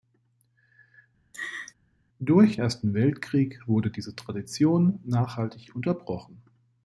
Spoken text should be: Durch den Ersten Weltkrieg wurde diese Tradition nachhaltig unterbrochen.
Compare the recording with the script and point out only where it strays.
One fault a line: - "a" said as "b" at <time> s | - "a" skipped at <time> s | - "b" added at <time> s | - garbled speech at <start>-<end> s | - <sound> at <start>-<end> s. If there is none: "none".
- laugh at 1.3-1.7 s
- "den" skipped at 2.6 s